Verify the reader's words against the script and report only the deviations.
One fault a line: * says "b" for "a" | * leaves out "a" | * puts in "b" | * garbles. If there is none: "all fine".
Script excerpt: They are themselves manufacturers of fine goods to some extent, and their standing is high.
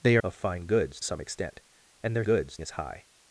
* leaves out "are themselves manufacturers"
* leaves out "to"
* says "goods" for "standing"